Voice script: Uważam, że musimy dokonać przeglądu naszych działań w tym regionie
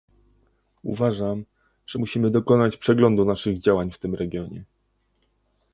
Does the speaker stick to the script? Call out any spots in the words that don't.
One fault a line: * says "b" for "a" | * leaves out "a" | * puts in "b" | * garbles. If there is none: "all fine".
all fine